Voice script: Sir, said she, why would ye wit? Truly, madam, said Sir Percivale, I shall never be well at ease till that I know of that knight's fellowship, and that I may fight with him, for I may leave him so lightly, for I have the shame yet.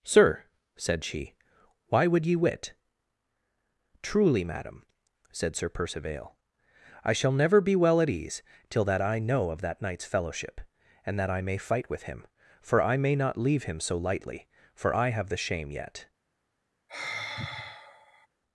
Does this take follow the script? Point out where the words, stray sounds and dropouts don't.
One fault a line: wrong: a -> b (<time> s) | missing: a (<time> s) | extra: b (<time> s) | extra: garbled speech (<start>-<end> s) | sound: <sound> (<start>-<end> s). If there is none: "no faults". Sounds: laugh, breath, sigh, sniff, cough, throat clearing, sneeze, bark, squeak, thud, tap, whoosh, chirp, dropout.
extra: not (13.2 s)
sound: sigh (16.9-18.3 s)